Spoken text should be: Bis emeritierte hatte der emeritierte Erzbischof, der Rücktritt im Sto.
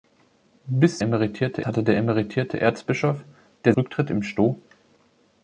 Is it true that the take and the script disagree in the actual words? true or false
false